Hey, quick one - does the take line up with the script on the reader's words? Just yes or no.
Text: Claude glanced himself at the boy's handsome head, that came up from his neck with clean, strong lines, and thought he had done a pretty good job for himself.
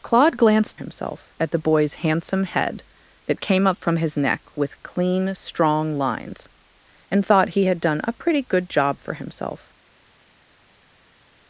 yes